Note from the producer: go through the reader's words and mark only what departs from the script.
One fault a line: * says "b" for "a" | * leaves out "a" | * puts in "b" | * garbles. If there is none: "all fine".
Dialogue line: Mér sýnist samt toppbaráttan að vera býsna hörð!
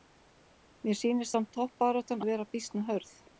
all fine